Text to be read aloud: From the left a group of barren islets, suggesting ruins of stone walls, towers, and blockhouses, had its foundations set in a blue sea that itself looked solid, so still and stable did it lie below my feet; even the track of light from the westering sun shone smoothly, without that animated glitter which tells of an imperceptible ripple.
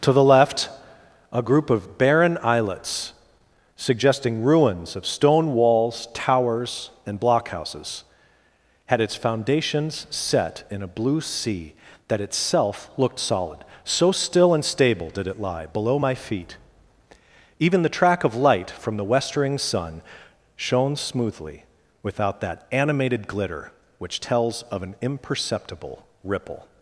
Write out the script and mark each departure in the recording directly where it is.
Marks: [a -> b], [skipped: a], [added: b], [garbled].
[From -> To] the left a group of barren islets, suggesting ruins of stone walls, towers, and blockhouses, had its foundations set in a blue sea that itself looked solid, so still and stable did it lie below my feet; even the track of light from the westering sun shone smoothly, without that animated glitter which tells of an imperceptible ripple.